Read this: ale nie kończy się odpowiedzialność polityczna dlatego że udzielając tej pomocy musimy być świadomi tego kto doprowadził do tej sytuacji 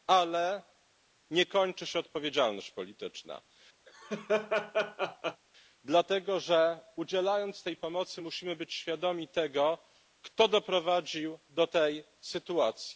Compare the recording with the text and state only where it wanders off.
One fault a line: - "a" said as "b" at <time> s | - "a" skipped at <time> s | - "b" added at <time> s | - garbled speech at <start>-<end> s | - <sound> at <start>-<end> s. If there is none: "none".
- laugh at 3.9-5.4 s